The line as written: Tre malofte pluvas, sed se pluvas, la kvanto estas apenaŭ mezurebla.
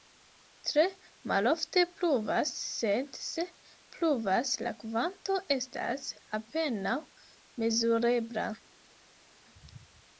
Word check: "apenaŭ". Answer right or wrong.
right